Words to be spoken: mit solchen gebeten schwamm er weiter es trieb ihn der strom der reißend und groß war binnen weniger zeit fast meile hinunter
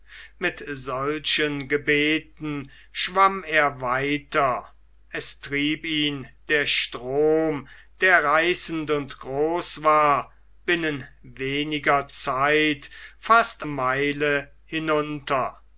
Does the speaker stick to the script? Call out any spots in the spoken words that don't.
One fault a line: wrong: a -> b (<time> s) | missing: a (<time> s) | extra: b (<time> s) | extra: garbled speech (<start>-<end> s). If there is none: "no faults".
no faults